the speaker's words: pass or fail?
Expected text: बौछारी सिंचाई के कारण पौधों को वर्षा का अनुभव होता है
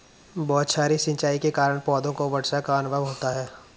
pass